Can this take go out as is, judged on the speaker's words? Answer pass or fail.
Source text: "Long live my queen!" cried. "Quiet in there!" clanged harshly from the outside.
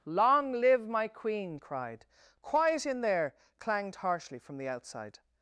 pass